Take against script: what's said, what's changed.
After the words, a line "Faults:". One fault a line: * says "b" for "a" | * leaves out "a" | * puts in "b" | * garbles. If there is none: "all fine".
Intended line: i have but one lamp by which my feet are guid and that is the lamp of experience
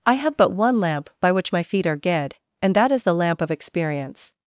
i have but one lamp by which my feet are guid and that is the lamp of experience
Faults:
all fine